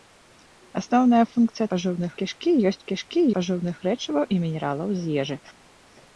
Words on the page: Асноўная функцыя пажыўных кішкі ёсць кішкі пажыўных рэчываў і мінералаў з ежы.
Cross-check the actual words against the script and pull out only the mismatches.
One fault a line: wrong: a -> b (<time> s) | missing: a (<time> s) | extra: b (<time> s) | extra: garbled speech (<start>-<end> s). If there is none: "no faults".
no faults